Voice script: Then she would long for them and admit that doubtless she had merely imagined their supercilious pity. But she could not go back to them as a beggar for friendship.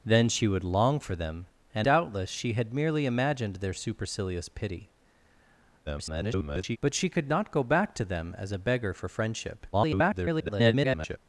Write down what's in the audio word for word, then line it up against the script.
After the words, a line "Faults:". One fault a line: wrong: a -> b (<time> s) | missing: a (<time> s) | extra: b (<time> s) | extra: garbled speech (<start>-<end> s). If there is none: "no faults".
Then she would long for them and doubtless she had merely imagined their supercilious pity. [garbled] But she could not go back to them as a beggar for friendship. [garbled]
Faults:
missing: admit that (1.9 s)
extra: garbled speech (5.9-6.8 s)
extra: garbled speech (9.7-11.2 s)